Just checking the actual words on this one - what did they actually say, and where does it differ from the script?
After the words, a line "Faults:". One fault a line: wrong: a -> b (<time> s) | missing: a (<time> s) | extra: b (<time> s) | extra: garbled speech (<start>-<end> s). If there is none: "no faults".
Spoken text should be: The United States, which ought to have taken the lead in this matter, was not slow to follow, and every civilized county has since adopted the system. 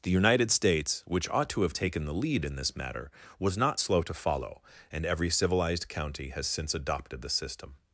The United States, which ought to have taken the lead in this matter, was not slow to follow, and every civilized county has since adopted the system.
Faults:
no faults